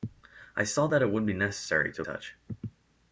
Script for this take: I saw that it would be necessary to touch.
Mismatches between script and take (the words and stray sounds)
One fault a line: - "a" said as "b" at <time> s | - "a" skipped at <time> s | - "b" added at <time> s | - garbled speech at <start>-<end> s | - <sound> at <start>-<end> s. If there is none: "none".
none